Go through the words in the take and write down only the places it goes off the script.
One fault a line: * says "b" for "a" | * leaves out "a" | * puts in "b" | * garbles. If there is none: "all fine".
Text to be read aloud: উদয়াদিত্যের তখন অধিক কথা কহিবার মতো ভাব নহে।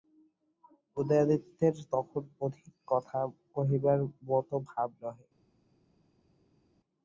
all fine